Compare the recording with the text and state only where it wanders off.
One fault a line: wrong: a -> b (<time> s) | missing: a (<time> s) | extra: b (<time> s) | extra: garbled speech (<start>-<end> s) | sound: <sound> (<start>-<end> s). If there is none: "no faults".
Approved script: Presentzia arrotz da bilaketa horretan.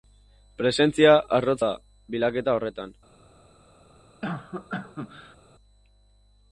sound: cough (4.2-5.4 s)